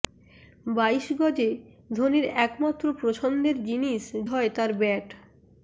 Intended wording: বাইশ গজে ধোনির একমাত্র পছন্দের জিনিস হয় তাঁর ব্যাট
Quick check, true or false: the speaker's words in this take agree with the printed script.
true